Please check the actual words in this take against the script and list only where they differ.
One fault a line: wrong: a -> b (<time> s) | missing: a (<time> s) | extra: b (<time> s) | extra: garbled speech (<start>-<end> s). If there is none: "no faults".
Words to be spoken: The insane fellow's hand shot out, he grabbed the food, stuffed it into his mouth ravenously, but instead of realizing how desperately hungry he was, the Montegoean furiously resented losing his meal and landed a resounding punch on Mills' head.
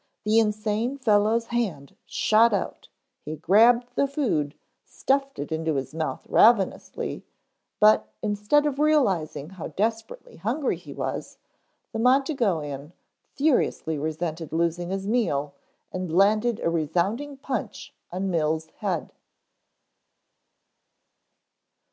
no faults